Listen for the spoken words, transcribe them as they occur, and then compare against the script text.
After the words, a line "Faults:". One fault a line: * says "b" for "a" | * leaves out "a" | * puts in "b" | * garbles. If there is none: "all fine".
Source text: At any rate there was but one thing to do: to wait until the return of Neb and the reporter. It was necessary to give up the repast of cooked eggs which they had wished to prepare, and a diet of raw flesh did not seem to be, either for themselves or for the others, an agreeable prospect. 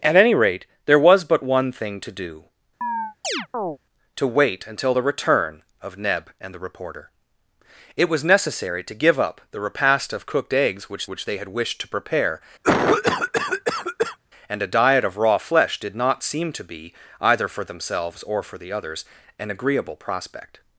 At any rate there was but one thing to do: to wait until the return of Neb and the reporter. It was necessary to give up the repast of cooked eggs which which they had wished to prepare, and a diet of raw flesh did not seem to be, either for themselves or for the others, an agreeable prospect.
Faults:
* puts in "which"